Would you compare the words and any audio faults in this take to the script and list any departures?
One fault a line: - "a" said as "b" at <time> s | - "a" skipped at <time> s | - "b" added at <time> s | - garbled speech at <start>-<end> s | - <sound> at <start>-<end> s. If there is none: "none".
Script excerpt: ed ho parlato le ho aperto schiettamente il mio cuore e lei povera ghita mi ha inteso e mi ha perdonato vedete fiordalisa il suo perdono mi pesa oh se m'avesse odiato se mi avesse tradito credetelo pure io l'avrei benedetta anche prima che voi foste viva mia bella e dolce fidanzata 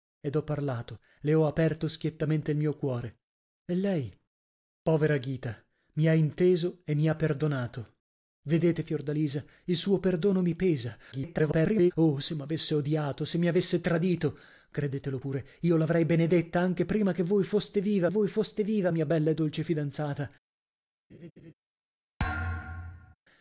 - garbled speech at 11.1-11.9 s
- "voi foste viva" added at 18.1 s
- laugh at 21.1-21.5 s
- thud at 22.2-23.2 s